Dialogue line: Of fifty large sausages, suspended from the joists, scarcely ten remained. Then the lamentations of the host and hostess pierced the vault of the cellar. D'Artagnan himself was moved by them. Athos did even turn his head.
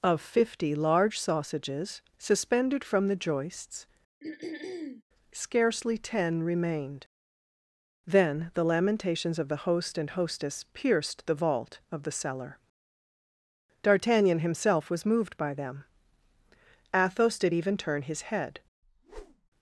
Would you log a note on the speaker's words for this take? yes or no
no